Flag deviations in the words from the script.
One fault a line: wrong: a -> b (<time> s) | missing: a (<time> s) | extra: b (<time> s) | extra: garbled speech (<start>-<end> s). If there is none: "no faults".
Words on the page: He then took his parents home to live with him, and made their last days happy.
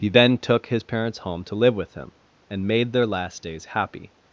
no faults